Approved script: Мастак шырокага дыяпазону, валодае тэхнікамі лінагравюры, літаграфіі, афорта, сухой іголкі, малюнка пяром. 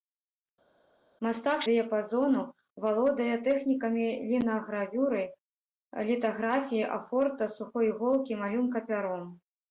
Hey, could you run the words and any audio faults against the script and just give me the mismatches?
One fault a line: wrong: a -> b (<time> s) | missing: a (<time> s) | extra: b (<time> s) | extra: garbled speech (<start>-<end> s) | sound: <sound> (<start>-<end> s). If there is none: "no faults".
missing: шырокага (1.6 s)